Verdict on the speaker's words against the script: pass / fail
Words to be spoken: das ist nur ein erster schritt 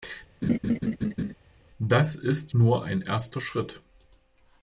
pass